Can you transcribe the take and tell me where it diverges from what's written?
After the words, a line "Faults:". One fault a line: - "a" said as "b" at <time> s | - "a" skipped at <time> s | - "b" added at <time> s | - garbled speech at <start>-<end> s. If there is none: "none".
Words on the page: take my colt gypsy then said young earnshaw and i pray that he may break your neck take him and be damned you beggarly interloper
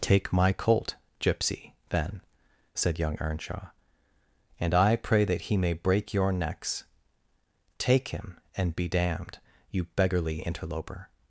take my colt gypsy then said young earnshaw and i pray that he may break your necks take him and be damned you beggarly interloper
Faults:
- "neck" said as "necks" at 6.3 s